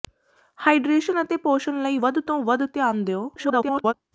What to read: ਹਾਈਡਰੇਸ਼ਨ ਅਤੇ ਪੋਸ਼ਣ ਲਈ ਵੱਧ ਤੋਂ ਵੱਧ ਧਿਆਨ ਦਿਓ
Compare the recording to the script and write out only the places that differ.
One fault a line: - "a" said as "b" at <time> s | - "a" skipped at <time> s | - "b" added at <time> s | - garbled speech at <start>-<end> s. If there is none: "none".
- garbled speech at 3.4-3.9 s